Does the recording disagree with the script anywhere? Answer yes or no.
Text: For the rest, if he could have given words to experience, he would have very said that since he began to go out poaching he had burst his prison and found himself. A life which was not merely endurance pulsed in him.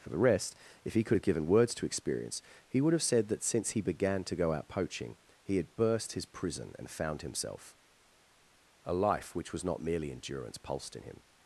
yes